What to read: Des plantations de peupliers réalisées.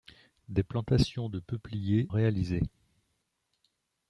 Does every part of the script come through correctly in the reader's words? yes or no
yes